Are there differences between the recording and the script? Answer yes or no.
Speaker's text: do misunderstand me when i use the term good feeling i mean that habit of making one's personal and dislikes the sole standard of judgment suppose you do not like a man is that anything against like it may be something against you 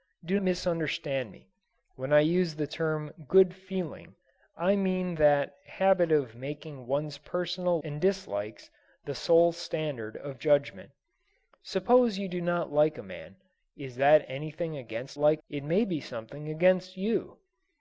no